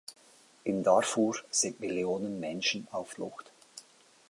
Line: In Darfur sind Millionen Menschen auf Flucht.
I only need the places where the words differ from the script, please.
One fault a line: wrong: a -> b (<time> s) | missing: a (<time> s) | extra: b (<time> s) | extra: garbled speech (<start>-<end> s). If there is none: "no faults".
no faults